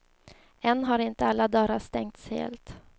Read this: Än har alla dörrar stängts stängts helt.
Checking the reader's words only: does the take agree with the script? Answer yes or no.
no